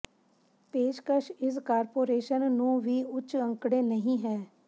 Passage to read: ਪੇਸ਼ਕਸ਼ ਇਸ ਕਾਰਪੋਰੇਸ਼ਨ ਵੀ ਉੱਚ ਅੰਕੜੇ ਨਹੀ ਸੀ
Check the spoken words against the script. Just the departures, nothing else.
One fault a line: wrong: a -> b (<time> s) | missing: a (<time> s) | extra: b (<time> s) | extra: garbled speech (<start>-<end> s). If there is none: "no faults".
extra: ਨੂੰ (2.5 s)
wrong: ਸੀ -> ਹੈ (4.2 s)